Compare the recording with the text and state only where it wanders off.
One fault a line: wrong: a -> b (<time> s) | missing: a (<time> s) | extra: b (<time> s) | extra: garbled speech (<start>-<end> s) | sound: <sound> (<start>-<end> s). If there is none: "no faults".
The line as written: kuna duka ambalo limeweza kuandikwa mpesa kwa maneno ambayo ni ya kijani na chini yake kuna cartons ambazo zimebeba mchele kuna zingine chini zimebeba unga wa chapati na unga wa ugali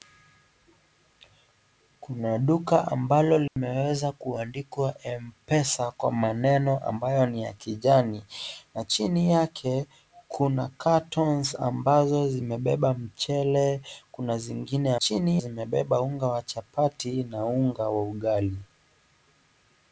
sound: dropout (3.5-3.6 s)